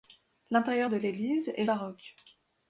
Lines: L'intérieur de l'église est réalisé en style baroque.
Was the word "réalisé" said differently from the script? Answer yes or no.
yes